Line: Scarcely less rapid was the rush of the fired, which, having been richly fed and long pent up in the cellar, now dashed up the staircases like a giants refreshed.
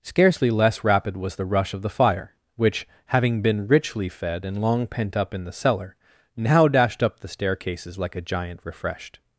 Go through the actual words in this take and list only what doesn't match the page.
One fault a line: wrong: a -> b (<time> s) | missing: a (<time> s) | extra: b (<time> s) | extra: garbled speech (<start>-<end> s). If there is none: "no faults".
wrong: fired -> fire (1.9 s)
wrong: giants -> giant (8.2 s)